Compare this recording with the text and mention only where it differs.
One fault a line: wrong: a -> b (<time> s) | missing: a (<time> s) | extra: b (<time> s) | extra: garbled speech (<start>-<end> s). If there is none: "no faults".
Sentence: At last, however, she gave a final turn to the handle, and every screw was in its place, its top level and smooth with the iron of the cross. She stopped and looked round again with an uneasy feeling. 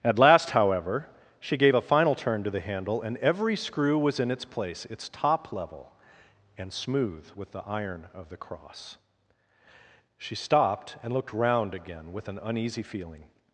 no faults